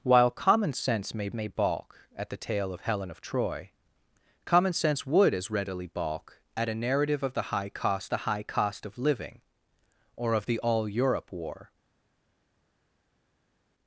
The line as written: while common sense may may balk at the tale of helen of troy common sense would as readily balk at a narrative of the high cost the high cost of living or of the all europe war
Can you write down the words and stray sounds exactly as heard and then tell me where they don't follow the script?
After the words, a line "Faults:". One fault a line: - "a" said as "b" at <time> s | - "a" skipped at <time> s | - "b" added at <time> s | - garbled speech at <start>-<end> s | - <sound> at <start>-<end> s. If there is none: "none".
while common sense may may balk at the tale of helen of troy common sense would as readily balk at a narrative of the high cost the high cost of living or of the all europe war
Faults:
none